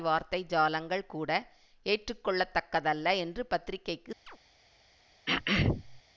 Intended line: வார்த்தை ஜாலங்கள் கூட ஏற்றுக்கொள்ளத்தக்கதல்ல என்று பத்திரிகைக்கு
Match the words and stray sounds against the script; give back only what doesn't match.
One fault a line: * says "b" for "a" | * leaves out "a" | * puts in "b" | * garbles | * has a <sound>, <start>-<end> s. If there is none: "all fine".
* has a chirp, 4.3-4.4 s
* has a throat clearing, 5.3-6.0 s